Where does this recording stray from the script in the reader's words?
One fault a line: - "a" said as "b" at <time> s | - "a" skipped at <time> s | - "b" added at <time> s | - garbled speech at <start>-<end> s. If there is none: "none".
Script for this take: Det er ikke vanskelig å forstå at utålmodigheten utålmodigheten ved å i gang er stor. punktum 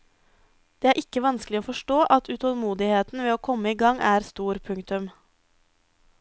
- "utålmodigheten" skipped at 3.2 s
- "komme" added at 3.5 s